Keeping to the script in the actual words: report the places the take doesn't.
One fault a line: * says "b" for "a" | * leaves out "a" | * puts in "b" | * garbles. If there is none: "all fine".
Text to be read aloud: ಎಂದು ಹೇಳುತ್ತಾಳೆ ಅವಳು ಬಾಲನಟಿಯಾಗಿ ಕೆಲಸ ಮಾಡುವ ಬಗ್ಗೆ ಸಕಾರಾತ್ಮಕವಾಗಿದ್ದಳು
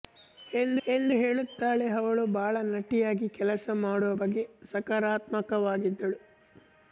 * puts in "ಎಂದು"